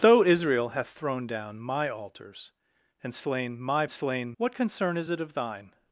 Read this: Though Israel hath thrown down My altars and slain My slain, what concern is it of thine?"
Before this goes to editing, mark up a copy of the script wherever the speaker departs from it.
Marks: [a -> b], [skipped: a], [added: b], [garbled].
Though Israel hath thrown down My altars and slain My slain, what concern is it of thine?"